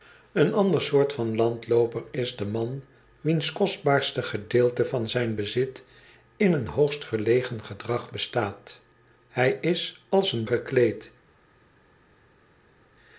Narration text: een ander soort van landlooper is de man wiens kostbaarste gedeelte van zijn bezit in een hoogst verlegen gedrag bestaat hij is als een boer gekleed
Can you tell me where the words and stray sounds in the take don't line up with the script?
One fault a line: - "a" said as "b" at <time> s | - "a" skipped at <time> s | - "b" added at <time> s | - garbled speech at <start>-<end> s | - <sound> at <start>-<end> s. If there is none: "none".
- "boer" skipped at 10.5 s